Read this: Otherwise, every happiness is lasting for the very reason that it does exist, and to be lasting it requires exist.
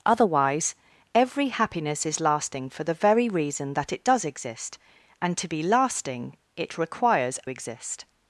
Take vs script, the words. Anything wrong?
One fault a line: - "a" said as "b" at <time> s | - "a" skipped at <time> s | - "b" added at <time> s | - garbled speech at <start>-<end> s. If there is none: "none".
none